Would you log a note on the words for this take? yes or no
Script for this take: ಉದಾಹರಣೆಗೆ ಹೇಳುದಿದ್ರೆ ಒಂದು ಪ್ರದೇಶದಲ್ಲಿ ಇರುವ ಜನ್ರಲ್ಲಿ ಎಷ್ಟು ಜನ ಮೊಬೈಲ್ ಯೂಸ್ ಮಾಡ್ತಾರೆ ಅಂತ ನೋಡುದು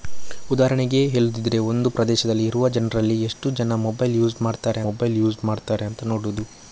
yes